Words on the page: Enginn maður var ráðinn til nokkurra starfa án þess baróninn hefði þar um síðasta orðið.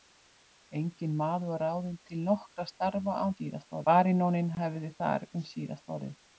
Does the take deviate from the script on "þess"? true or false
true